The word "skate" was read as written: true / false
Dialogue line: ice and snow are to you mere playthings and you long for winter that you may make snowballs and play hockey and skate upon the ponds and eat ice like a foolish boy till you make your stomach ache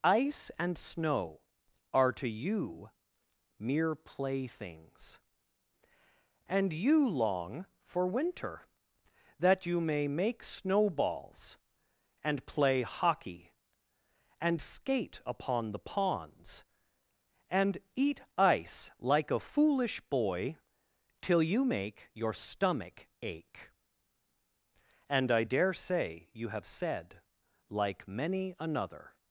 true